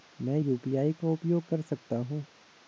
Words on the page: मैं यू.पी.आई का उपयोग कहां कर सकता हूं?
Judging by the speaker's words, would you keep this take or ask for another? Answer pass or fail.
fail